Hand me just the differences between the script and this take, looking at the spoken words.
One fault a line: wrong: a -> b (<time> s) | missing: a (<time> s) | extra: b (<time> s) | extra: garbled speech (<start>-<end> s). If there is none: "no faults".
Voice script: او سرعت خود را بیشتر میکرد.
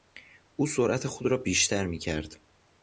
no faults